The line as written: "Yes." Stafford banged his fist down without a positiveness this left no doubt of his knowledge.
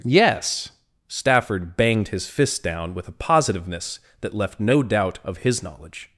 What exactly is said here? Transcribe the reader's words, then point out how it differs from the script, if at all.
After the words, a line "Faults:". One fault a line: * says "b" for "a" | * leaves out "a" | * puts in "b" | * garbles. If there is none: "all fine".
"Yes." Stafford banged his fist down with a positiveness that left no doubt of his knowledge.
Faults:
* says "with" for "without"
* says "that" for "this"